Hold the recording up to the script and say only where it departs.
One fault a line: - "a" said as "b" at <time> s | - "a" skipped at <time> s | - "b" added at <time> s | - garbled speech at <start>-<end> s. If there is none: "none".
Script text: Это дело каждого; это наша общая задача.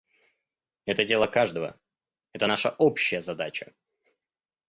none